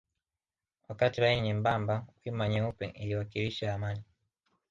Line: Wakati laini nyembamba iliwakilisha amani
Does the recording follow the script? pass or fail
fail